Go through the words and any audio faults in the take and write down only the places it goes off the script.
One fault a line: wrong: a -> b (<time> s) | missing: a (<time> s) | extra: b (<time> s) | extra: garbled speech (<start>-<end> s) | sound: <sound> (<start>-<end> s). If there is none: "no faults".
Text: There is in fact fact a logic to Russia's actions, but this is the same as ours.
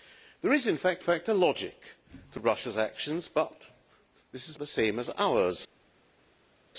no faults